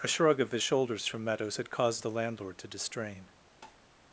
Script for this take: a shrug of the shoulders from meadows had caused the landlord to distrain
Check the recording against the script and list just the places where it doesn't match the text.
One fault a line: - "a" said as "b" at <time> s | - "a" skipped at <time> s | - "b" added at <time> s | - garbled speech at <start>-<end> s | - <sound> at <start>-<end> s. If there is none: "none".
- "the" said as "his" at 0.5 s
- tap at 3.6-3.8 s